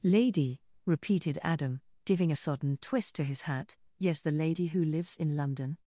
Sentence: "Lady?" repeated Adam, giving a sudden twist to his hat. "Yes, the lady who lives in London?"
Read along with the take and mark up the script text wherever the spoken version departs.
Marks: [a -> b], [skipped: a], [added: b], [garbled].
"Lady?" repeated Adam, giving a [sudden -> sodden] twist to his hat. "Yes, the lady who lives in London?"